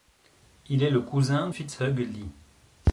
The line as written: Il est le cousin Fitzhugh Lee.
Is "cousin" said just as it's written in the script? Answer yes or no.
yes